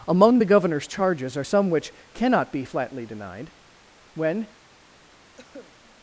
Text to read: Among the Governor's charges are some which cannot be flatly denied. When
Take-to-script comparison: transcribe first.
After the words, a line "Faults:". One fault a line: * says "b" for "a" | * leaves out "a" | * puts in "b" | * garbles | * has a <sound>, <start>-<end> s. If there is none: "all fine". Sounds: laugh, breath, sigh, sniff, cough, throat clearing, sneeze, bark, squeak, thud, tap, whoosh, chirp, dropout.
Among the Governor's charges are some which cannot be flatly denied. When
Faults:
* has a cough, 5.4-5.7 s